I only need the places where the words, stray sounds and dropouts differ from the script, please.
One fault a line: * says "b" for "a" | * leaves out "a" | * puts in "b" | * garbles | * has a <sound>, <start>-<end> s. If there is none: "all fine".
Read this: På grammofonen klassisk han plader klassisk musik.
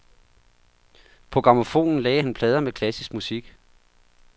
* says "lagde" for "klassisk"
* puts in "med"